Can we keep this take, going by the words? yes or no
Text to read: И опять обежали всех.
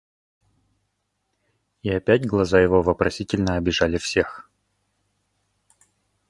no